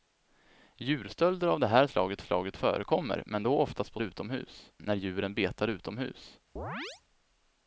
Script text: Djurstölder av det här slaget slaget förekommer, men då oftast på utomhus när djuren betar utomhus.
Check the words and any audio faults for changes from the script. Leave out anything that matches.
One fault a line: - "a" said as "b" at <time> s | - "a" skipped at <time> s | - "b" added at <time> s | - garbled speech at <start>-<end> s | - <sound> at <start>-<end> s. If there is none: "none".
- chirp at 6.6-7.0 s